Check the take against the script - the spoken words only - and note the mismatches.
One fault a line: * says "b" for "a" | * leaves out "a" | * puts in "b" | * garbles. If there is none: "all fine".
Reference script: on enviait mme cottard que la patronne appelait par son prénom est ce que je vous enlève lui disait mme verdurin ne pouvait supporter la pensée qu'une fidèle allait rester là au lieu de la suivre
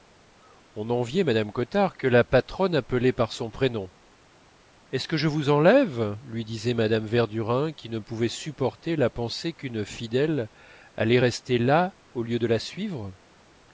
* puts in "qui"